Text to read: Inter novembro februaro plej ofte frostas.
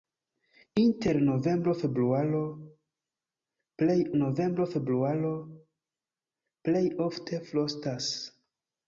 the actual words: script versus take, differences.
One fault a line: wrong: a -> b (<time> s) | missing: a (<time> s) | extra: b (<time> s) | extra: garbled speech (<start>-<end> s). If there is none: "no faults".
extra: novembro februaro plej (4.2 s)